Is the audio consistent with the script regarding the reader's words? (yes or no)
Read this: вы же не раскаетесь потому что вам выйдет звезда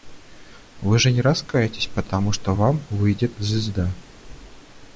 yes